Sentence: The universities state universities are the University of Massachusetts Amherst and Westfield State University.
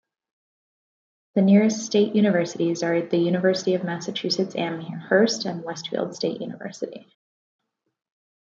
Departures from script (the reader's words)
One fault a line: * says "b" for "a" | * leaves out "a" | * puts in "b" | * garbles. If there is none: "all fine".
* says "nearest" for "universities"